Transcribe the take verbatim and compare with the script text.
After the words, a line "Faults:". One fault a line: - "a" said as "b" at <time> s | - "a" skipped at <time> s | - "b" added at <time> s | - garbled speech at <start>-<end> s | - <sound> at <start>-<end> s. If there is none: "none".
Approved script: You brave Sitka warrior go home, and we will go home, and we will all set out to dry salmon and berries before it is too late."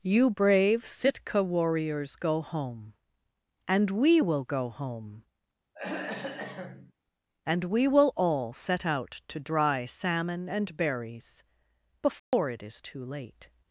You brave Sitka warriors go home, and we will go home, and we will all set out to dry salmon and berries before it is too late."
Faults:
- "warrior" said as "warriors" at 1.4 s
- throat clearing at 5.7-6.9 s
- dropout at 12.2-12.3 s